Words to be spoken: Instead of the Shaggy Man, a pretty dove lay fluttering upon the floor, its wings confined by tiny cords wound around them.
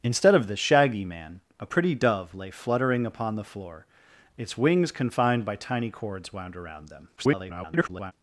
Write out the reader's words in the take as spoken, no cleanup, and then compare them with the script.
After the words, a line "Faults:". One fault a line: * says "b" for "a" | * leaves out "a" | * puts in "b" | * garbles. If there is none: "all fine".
Instead of the Shaggy Man, a pretty dove lay fluttering upon the floor, its wings confined by tiny cords wound around them. [garbled]
Faults:
* garbles